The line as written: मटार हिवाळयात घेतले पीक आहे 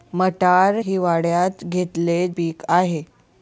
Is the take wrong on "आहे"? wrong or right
right